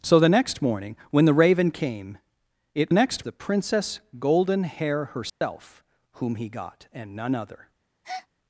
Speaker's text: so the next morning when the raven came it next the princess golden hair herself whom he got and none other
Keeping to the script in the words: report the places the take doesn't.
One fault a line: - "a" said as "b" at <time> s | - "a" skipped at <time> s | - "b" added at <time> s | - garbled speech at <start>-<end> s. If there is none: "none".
none